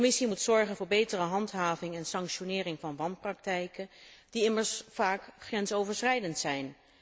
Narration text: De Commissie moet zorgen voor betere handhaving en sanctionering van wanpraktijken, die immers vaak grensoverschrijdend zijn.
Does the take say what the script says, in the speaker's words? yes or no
yes